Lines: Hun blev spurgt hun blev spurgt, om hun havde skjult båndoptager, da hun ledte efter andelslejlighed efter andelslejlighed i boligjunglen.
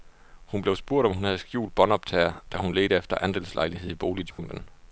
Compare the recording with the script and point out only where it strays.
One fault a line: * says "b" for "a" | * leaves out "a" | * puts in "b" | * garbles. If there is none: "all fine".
* leaves out "hun blev spurgt"
* leaves out "efter andelslejlighed"